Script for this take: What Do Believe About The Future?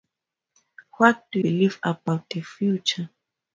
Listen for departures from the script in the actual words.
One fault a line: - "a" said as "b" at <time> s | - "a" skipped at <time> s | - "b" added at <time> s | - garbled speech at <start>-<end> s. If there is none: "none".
none